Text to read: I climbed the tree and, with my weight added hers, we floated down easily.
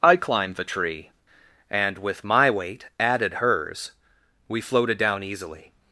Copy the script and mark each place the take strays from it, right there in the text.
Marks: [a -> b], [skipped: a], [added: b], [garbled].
I climbed the tree and, with my weight added hers, we floated down easily.